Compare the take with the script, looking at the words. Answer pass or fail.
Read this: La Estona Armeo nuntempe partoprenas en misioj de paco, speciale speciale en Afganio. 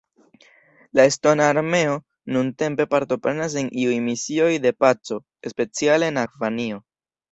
fail